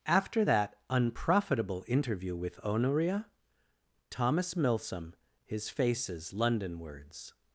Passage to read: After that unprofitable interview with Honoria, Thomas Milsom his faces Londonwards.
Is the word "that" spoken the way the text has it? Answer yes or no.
yes